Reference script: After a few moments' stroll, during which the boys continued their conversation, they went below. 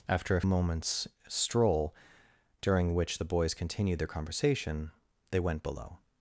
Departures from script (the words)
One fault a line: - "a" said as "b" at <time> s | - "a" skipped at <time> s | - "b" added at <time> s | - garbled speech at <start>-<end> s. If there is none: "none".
- "few" skipped at 0.4 s